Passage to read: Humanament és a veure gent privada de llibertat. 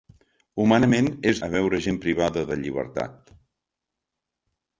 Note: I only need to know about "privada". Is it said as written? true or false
true